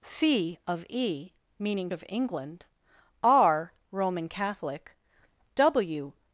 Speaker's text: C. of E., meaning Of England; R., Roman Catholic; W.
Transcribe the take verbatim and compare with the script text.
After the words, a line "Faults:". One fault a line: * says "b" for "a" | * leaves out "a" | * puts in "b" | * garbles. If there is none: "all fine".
C. of E., meaning Of England; R., Roman Catholic; W.
Faults:
all fine